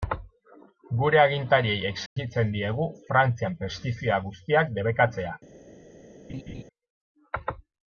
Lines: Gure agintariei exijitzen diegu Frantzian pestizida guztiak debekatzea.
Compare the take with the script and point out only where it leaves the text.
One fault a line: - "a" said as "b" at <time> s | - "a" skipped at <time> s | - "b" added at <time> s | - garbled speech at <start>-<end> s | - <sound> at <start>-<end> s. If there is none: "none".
- dropout at 2.1-2.2 s
- laugh at 6.3-6.6 s